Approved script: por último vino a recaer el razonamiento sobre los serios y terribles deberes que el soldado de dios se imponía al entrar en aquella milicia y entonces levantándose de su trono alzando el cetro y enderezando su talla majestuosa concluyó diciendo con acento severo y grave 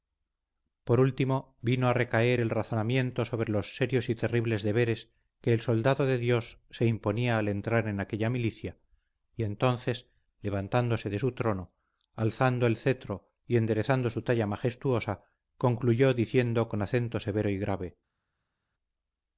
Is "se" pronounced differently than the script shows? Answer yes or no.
no